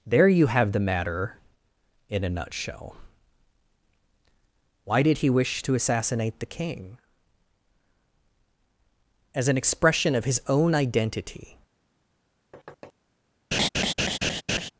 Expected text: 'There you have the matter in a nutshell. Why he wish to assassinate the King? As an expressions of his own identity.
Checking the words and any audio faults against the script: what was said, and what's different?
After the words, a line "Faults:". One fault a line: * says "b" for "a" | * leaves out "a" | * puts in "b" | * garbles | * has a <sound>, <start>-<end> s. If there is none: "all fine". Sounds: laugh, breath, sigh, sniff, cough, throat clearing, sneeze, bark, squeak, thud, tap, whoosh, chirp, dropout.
'There you have the matter in a nutshell. Why did he wish to assassinate the King? As an expression of his own identity.
Faults:
* puts in "did"
* says "expression" for "expressions"
* has a thud, 12.5-12.9 s
* has a laugh, 13.5-14.7 s